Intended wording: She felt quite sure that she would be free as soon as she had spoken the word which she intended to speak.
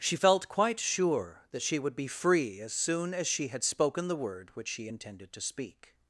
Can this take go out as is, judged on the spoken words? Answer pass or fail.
pass